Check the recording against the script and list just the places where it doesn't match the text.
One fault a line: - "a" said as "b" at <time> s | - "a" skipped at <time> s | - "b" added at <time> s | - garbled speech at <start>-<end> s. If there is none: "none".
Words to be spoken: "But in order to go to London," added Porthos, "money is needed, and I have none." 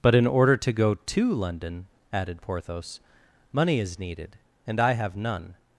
none